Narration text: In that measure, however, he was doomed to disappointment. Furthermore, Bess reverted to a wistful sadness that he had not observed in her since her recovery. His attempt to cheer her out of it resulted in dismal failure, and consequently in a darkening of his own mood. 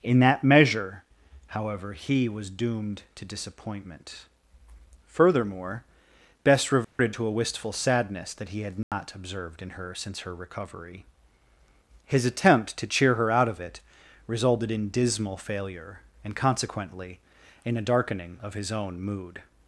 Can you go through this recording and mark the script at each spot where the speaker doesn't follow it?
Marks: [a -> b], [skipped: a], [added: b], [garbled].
In that measure, however, he was doomed to disappointment. Furthermore, Bess reverted to a wistful sadness that he had not observed in her since her recovery. His attempt to cheer her out of it resulted in dismal failure, and consequently in a darkening of his own mood.